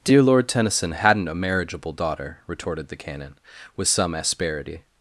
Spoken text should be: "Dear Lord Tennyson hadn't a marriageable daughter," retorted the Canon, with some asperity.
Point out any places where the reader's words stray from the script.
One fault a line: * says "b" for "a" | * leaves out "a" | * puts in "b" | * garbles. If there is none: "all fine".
all fine